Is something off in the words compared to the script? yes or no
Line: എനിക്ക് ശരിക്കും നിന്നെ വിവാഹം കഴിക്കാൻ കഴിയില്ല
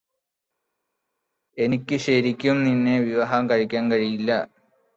no